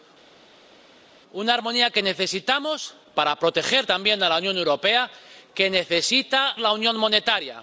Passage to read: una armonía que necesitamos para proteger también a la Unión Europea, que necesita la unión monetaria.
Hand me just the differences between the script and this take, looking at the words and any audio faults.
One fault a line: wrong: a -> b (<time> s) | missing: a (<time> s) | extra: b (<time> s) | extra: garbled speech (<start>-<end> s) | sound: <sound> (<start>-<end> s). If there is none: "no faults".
no faults